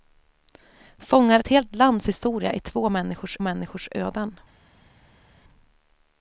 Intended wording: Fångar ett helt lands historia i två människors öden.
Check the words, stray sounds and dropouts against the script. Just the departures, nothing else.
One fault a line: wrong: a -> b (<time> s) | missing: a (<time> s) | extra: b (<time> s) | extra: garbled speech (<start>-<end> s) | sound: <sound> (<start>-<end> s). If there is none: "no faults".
extra: människors (3.4 s)